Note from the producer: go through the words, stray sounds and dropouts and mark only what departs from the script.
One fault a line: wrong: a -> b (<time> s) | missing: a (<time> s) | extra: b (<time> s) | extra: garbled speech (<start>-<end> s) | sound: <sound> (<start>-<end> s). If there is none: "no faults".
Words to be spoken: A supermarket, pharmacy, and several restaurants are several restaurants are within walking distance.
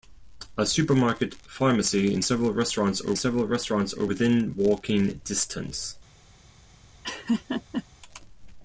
sound: laugh (7.0-7.8 s)